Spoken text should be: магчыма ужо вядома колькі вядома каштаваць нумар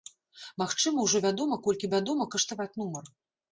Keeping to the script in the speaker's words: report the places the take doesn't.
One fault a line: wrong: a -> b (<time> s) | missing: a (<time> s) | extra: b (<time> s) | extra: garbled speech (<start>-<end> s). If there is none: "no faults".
no faults